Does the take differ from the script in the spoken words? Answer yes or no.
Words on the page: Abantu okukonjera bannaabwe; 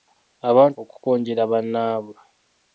no